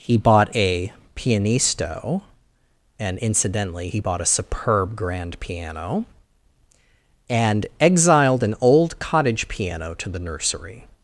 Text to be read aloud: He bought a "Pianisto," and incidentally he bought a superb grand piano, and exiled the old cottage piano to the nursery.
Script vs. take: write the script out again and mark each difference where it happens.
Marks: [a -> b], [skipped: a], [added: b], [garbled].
He bought a "Pianisto," and incidentally he bought a superb grand piano, and exiled [the -> an] old cottage piano to the nursery.